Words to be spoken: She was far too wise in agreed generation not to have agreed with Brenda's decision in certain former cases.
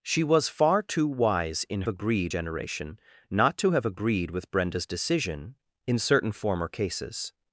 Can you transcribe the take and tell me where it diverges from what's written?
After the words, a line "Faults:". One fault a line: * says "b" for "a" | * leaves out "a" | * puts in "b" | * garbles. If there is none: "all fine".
She was far too wise in agreed generation not to have agreed with Brenda's decision in certain former cases.
Faults:
all fine